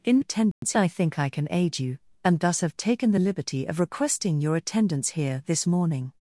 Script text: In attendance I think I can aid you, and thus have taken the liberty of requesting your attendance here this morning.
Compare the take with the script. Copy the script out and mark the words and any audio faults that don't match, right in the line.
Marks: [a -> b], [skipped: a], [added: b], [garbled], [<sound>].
In attendance [dropout] I think I can aid you, and thus have taken the liberty of requesting your attendance here this morning.